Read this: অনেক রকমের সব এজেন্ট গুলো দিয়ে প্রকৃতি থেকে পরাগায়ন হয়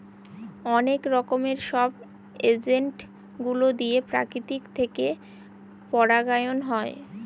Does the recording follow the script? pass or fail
pass